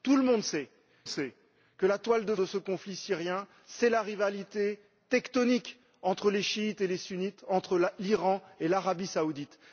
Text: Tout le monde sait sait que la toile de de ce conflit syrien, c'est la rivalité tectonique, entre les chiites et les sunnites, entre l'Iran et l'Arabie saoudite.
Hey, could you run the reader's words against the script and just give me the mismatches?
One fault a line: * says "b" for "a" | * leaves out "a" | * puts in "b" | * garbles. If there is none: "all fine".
all fine